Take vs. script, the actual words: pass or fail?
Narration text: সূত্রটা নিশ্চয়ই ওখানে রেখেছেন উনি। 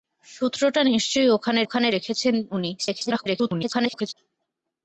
fail